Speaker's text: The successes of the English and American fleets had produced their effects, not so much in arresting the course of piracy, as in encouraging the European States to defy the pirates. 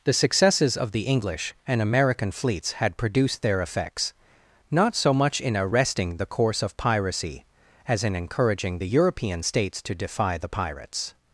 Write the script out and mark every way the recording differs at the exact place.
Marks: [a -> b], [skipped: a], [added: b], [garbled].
The successes of the English and American fleets had produced their effects, not so much in arresting the course of piracy, as in encouraging the European States to defy the pirates.